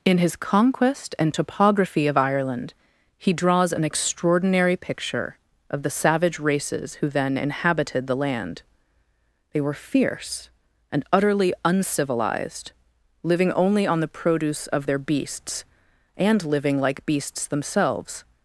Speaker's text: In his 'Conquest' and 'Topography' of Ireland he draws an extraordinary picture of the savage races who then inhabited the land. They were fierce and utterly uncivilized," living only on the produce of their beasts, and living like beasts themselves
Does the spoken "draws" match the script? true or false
true